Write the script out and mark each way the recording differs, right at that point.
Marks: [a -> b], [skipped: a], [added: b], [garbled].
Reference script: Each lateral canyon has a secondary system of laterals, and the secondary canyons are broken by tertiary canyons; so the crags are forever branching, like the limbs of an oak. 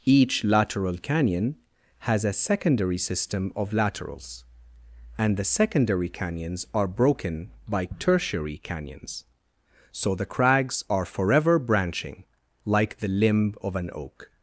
Each lateral canyon has a secondary system of laterals, and the secondary canyons are broken by tertiary canyons; so the crags are forever branching, like the [limbs -> limb] of an oak.